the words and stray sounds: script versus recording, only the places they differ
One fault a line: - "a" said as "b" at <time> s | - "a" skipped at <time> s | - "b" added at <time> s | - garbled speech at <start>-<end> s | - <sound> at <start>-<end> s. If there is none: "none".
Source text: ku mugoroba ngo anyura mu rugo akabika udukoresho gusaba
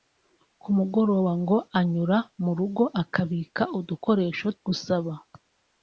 none